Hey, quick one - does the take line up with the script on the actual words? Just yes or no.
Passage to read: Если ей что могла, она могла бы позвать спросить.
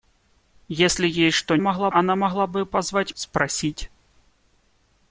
yes